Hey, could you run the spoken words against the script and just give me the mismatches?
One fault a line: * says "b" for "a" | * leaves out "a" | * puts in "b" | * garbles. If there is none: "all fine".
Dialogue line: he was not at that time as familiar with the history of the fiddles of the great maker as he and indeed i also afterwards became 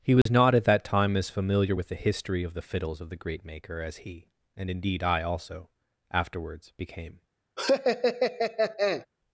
all fine